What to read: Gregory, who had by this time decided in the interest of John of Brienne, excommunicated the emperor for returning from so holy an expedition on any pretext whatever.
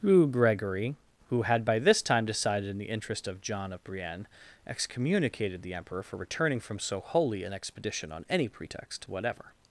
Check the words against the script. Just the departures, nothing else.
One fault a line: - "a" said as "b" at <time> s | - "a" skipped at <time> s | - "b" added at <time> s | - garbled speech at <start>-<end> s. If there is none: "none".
- "who" added at 0.0 s